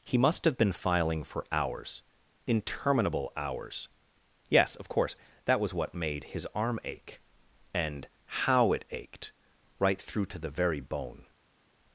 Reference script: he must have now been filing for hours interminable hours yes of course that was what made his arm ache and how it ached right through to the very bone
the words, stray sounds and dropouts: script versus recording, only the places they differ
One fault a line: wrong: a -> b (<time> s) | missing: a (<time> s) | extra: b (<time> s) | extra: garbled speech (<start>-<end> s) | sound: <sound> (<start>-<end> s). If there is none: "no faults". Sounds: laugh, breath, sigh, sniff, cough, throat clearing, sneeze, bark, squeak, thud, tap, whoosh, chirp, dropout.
missing: now (0.6 s)